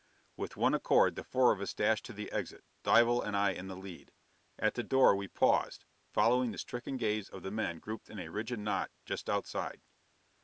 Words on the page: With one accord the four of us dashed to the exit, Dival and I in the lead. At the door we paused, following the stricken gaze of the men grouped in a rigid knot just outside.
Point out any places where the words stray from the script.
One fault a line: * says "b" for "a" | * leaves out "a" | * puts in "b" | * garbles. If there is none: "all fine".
all fine